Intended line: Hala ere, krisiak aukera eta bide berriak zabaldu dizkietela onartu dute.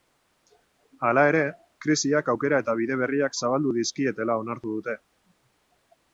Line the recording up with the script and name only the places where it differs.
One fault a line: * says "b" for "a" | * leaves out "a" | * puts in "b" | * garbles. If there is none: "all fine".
all fine